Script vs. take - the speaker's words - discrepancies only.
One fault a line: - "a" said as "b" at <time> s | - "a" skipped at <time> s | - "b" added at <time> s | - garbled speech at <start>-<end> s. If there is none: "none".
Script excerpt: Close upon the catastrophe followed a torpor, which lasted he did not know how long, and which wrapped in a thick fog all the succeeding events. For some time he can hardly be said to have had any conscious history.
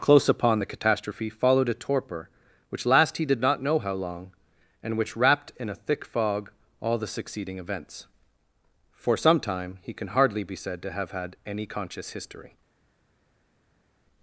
- "lasted" said as "last" at 2.9 s